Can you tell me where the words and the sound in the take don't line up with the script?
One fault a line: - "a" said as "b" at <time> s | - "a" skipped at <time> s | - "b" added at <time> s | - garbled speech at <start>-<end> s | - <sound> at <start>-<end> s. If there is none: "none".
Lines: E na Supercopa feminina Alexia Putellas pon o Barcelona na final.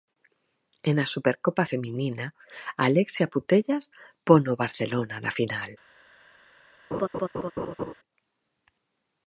- laugh at 6.9-7.9 s